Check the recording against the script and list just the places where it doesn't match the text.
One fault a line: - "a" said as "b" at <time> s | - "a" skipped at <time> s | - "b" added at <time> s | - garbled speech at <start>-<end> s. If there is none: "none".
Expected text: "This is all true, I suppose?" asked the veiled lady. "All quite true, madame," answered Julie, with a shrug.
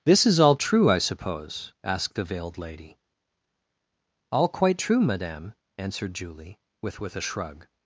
- "with" added at 7.0 s